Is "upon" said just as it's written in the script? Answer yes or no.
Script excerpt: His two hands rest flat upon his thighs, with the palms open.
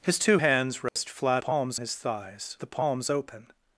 no